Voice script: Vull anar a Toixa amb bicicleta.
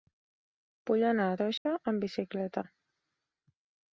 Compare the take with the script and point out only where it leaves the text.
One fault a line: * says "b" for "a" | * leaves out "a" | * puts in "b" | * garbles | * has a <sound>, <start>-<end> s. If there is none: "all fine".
* has a dropout, 1.6-1.7 s